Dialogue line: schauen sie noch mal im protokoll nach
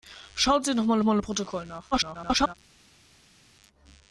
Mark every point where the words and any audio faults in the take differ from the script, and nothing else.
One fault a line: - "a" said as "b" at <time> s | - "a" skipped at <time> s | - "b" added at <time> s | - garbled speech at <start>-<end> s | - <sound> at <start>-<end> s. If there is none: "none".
- "mal" added at 1.0 s
- garbled speech at 1.9-2.5 s